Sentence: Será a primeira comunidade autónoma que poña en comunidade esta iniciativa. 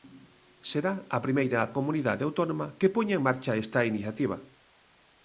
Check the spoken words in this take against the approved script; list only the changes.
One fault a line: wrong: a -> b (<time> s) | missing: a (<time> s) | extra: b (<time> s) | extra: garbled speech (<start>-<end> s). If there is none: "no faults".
wrong: comunidade -> marcha (3.3 s)